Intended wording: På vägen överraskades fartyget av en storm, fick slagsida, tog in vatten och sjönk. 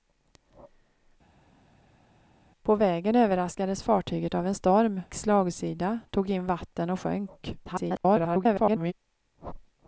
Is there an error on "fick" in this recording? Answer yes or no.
yes